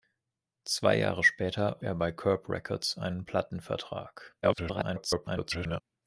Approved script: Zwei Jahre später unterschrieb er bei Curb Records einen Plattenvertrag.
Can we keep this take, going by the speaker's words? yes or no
no